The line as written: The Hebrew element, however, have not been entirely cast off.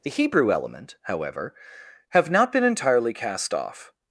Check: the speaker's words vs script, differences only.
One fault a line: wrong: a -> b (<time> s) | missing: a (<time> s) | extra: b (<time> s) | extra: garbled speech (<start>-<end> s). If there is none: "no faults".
no faults